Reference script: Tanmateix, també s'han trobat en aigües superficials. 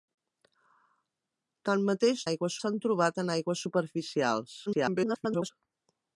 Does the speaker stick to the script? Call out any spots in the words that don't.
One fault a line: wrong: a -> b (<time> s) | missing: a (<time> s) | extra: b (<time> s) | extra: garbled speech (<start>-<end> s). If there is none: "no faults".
wrong: també -> aigües (2.3 s)
extra: garbled speech (4.7-5.5 s)